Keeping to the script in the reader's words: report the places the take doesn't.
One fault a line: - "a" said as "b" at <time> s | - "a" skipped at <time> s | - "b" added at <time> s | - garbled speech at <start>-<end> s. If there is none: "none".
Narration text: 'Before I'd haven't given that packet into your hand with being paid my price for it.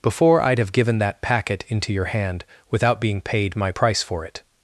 - "haven't" said as "have" at 0.6 s
- "with" said as "without" at 2.7 s